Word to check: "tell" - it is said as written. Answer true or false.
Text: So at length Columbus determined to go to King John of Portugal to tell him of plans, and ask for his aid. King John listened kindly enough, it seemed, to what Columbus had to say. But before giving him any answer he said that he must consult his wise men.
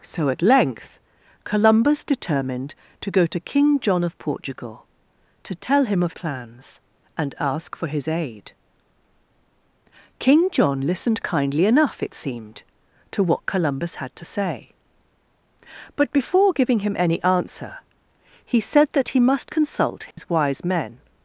true